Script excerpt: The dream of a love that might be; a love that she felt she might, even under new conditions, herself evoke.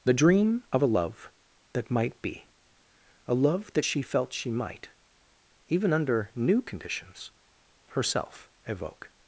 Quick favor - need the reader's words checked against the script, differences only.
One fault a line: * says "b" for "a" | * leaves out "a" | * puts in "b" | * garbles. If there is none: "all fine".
all fine